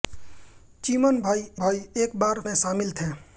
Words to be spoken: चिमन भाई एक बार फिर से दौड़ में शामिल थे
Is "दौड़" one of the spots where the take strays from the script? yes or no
yes